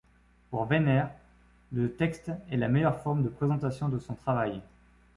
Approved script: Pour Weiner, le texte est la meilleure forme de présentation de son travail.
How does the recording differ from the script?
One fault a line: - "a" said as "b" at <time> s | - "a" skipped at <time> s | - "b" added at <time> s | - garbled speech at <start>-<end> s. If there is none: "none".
none